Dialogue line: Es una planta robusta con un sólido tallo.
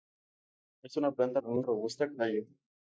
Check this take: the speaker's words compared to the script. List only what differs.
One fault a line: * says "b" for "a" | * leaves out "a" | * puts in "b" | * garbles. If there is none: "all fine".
* leaves out "robusta"
* says "robusta" for "sólido"